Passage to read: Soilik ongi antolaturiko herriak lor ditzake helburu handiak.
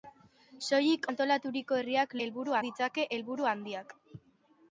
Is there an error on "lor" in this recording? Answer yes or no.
yes